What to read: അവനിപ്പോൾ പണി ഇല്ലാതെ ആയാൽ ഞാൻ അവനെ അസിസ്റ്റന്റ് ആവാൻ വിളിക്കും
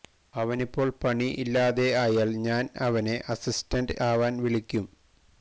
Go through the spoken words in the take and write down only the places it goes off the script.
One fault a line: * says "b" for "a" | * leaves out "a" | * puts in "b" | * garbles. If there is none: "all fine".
all fine